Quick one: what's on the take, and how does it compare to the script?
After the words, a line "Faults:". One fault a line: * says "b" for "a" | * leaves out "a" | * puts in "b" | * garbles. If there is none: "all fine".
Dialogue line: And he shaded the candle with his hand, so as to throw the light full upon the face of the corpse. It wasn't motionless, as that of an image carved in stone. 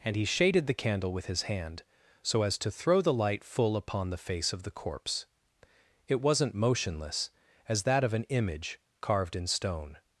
And he shaded the candle with his hand, so as to throw the light full upon the face of the corpse. It wasn't motionless, as that of an image carved in stone.
Faults:
all fine